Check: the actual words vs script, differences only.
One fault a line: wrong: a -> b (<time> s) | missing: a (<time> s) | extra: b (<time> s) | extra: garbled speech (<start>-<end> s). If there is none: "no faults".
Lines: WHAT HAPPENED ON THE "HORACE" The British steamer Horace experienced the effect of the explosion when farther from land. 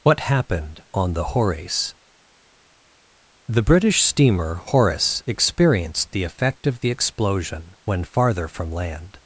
no faults